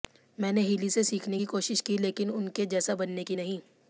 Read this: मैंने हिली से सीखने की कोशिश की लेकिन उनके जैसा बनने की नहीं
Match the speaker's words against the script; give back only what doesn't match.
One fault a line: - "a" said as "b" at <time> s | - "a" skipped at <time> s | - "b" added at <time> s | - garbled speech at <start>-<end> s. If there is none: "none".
none